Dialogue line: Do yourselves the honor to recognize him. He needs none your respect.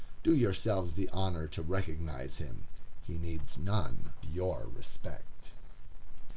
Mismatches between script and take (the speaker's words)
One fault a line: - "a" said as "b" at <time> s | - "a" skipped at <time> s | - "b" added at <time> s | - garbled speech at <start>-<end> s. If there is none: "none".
none